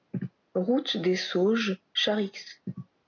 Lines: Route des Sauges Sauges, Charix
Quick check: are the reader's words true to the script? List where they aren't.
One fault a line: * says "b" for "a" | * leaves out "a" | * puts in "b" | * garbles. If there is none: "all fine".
* leaves out "Sauges"